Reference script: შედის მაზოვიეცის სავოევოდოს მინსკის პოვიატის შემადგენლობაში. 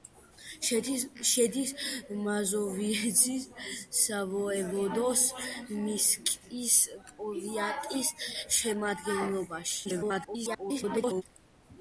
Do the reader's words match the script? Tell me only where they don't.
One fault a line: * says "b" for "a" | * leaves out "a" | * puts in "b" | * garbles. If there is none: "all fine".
* garbles